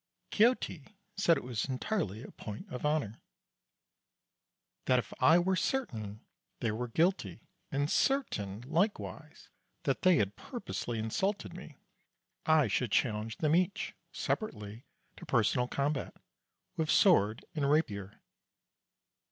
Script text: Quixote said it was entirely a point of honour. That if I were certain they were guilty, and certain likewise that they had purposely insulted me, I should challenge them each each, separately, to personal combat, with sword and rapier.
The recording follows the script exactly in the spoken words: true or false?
false